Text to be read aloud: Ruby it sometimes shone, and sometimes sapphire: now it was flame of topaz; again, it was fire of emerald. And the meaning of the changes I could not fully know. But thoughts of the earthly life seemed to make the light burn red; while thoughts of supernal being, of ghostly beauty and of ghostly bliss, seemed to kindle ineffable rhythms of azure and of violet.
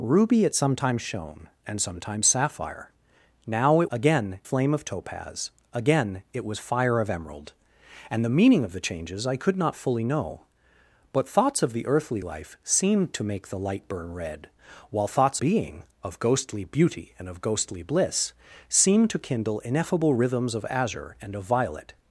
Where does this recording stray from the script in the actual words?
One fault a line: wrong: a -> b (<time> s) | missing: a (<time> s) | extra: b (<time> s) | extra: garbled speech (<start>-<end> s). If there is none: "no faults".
wrong: was -> again (3.9 s)
missing: of supernal (15.4 s)